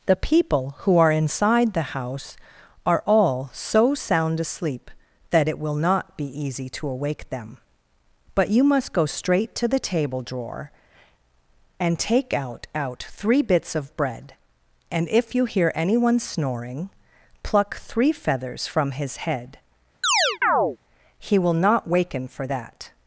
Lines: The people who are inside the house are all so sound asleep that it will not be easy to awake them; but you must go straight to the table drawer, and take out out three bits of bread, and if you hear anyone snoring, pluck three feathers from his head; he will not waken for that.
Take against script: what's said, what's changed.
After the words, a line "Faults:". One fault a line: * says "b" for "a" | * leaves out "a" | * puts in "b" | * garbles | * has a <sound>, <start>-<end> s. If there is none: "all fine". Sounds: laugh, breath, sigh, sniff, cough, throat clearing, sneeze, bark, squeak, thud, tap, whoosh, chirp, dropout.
The people who are inside the house are all so sound asleep that it will not be easy to awake them; but you must go straight to the table drawer, and take out out three bits of bread, and if you hear anyone snoring, pluck three feathers from his head; he will not waken for that.
Faults:
* has a chirp, 20.0-20.8 s